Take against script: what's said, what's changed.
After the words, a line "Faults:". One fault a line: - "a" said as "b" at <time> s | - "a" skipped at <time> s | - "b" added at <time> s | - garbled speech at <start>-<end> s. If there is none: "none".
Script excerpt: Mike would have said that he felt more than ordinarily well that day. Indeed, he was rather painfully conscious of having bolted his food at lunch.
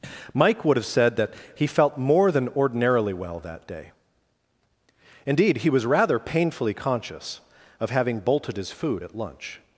Mike would have said that he felt more than ordinarily well that day. Indeed, he was rather painfully conscious of having bolted his food at lunch.
Faults:
none